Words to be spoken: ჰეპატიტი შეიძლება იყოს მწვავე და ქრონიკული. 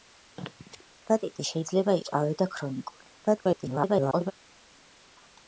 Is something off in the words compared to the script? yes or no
yes